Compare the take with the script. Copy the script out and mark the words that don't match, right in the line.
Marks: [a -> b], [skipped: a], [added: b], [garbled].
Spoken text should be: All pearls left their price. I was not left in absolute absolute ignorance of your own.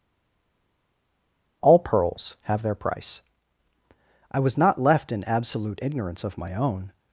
All pearls [left -> have] their price. I was not left in absolute [skipped: absolute] ignorance of [your -> my] own.